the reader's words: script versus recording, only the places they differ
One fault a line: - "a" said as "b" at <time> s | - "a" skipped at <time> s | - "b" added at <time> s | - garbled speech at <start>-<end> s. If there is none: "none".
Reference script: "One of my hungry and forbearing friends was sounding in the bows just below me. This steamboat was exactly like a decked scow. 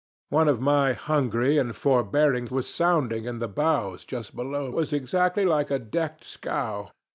- "friends" skipped at 2.5 s
- "me This steamboat" skipped at 4.7 s